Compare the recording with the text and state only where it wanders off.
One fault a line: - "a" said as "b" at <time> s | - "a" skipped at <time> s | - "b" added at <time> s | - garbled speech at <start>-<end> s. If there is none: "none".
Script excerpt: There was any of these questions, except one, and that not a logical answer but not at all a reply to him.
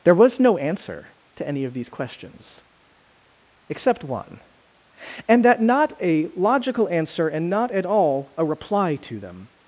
- "no answer to" added at 0.4 s
- "but" said as "and" at 7.3 s
- "him" said as "them" at 9.2 s